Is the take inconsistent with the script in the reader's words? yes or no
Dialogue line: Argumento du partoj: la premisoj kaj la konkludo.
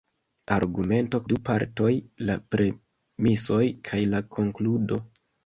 no